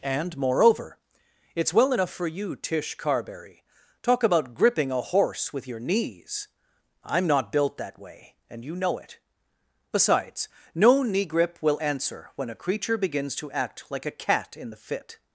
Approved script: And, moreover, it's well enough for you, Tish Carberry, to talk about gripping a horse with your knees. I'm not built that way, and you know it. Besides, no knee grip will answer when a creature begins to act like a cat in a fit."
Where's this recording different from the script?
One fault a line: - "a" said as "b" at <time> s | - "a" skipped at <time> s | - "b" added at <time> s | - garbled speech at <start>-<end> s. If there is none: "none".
- "to" skipped at 3.6 s
- "a" said as "the" at 14.7 s